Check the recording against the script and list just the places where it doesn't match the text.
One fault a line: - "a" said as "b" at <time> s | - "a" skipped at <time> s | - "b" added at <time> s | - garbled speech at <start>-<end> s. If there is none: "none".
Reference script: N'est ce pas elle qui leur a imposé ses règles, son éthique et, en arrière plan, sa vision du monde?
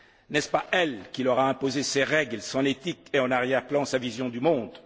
none